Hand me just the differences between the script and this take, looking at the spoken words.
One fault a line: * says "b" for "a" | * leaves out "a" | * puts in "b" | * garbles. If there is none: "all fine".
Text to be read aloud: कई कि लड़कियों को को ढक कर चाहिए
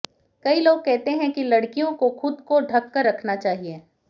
* puts in "लोग कहते हैं"
* puts in "खुद"
* puts in "रखना"